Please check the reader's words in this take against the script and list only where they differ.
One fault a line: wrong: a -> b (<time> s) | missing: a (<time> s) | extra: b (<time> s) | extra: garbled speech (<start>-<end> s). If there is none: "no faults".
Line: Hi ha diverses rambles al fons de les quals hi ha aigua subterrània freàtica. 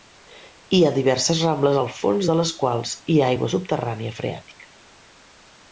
no faults